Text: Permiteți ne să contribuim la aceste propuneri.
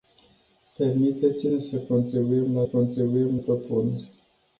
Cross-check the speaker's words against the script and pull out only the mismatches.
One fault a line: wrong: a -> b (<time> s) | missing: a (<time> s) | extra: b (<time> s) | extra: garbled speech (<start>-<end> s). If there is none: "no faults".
wrong: aceste -> contribuim (2.6 s)